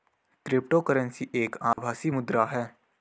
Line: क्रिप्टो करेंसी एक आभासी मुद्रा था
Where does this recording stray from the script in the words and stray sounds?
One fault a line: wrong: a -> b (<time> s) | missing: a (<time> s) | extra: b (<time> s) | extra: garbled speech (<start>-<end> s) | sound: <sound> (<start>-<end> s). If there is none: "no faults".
sound: dropout (1.7-1.8 s)
wrong: था -> है (2.5 s)